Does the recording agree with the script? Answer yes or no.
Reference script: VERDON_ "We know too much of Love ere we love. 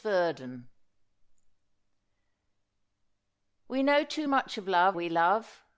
no